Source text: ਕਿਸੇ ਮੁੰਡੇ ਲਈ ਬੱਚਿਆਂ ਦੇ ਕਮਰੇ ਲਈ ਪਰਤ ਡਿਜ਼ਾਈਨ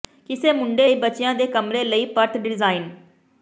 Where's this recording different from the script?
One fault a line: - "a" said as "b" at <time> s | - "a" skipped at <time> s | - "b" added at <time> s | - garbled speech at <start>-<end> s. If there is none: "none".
none